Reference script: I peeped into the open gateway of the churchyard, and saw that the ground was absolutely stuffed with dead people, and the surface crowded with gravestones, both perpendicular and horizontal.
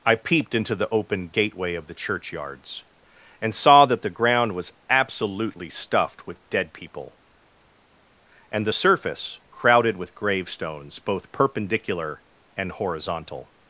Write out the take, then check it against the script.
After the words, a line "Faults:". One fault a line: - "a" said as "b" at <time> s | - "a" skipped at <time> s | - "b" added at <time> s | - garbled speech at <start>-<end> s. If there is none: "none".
I peeped into the open gateway of the churchyards, and saw that the ground was absolutely stuffed with dead people, and the surface crowded with gravestones, both perpendicular and horizontal.
Faults:
- "churchyard" said as "churchyards" at 1.9 s